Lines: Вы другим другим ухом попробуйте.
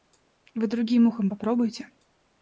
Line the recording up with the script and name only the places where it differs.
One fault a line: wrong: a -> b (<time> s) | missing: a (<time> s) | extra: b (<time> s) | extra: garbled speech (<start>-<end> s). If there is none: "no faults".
missing: другим (1.1 s)